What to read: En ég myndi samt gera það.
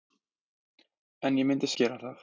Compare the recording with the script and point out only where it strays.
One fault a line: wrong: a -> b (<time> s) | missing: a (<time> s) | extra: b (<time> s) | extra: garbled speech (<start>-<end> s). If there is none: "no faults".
missing: samt (1.7 s)